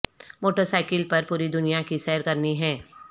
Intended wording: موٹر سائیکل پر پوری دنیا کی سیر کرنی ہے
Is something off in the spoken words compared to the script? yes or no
no